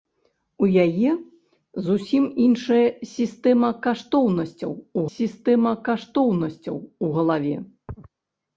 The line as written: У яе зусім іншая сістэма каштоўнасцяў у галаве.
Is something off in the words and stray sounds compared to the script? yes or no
yes